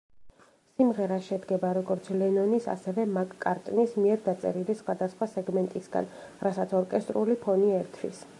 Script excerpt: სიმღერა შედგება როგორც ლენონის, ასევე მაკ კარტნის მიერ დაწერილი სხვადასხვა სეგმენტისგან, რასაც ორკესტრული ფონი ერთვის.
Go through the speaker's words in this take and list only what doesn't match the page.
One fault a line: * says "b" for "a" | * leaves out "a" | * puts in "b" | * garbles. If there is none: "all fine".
all fine